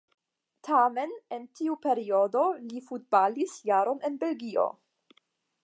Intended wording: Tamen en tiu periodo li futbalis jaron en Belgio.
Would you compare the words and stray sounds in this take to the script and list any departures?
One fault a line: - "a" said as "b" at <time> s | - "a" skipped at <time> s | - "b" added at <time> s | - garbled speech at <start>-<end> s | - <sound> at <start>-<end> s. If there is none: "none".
none